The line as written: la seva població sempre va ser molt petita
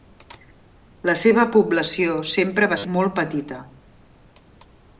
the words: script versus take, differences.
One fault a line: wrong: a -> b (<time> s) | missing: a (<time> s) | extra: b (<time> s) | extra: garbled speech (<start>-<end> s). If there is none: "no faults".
no faults